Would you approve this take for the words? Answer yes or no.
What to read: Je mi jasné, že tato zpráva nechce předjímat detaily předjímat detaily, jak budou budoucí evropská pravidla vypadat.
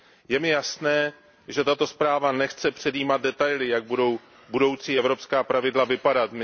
no